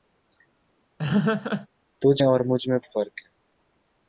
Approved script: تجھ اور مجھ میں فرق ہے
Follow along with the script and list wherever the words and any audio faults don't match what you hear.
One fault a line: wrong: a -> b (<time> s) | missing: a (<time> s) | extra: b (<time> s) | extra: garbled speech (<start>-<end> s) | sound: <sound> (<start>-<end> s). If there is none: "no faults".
sound: laugh (1.0-1.7 s)